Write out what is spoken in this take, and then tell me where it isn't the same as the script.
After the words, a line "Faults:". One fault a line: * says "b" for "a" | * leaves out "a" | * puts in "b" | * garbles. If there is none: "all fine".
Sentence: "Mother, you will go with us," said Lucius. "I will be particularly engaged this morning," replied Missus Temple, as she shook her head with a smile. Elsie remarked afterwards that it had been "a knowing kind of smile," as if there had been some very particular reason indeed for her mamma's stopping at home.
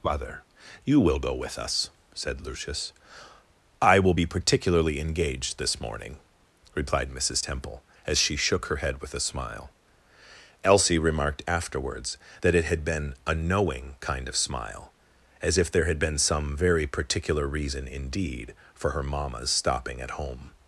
"Mother, you will go with us," said Lucius. "I will be particularly engaged this morning," replied Missus Temple, as she shook her head with a smile. Elsie remarked afterwards that it had been "a knowing kind of smile," as if there had been some very particular reason indeed for her mamma's stopping at home.
Faults:
all fine